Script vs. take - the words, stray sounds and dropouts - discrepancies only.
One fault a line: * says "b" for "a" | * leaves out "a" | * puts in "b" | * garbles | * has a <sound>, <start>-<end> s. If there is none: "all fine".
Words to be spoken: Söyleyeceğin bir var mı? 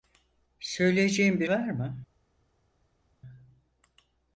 all fine